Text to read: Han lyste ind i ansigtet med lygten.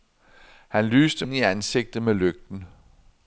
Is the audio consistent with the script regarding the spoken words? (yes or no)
yes